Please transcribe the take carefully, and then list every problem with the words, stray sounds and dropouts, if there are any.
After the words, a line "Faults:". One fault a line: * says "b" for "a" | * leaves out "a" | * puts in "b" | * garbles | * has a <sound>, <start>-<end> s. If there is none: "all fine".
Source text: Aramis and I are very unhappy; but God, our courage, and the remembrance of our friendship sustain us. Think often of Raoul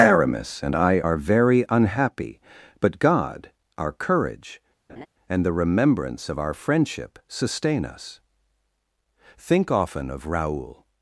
Aramis and I are very unhappy; but God, our courage, and the remembrance of our friendship sustain us. Think often of Raoul
Faults:
* has a laugh, 4.9-5.1 s